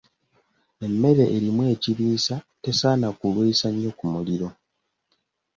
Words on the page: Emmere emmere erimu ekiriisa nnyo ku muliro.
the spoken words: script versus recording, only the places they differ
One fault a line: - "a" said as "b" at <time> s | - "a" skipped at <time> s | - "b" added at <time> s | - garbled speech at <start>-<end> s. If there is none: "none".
- "emmere" skipped at 1.2 s
- "tesaana kulwisa" added at 2.6 s